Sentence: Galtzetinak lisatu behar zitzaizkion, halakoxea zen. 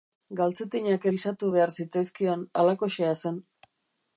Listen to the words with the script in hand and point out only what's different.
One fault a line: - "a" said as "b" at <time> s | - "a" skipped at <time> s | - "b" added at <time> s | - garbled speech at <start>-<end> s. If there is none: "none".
none